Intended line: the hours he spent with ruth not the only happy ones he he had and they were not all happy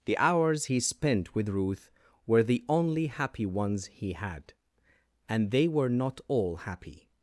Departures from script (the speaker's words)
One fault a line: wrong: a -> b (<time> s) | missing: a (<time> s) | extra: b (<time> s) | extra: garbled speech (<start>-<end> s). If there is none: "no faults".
wrong: not -> were (2.3 s)
missing: he (4.1 s)